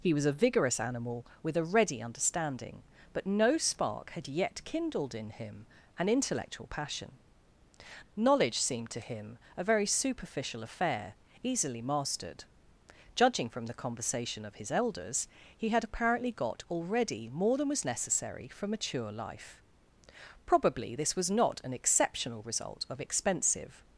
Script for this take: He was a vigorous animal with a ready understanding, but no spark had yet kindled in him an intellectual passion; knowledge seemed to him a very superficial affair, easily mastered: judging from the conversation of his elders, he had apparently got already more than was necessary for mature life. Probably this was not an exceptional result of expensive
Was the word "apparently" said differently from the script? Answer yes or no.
no